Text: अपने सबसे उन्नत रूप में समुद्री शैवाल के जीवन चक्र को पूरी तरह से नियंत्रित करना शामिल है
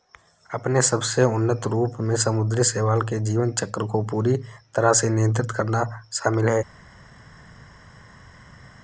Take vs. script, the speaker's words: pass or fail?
pass